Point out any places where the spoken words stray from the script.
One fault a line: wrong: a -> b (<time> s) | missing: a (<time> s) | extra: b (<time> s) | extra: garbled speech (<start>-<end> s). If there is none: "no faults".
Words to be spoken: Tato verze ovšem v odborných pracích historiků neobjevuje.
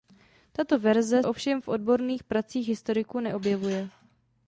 no faults